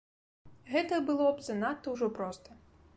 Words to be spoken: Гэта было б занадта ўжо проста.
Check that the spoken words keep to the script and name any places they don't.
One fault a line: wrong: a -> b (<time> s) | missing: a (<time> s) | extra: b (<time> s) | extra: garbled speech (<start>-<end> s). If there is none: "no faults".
no faults